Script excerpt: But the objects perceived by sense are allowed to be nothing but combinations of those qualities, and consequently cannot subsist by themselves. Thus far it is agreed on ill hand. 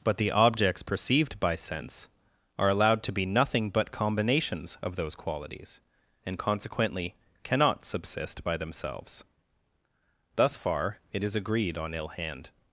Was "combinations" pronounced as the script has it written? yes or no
yes